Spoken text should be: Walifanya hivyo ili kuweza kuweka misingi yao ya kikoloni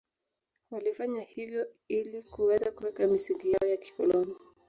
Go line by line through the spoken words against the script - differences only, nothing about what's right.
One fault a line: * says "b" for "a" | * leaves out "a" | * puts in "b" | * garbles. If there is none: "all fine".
all fine